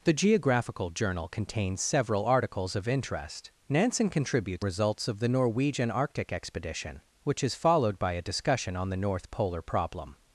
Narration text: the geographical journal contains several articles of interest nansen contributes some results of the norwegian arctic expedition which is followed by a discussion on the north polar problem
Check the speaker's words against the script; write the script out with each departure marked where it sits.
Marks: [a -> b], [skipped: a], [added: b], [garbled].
the geographical journal contains several articles of interest nansen contributes [skipped: some] results of the norwegian arctic expedition which is followed by a discussion on the north polar problem